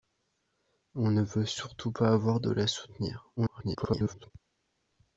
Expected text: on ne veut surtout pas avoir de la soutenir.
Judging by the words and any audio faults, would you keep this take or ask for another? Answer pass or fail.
fail